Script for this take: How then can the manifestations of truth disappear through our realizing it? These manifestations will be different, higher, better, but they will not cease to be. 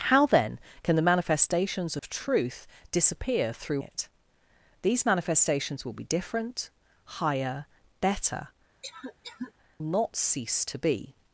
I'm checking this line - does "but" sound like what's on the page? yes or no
no